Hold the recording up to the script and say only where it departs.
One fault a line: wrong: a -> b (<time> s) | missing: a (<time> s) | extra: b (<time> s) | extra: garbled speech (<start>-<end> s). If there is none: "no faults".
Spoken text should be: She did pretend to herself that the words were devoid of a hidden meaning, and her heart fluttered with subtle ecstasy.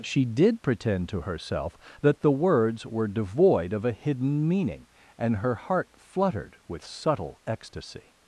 no faults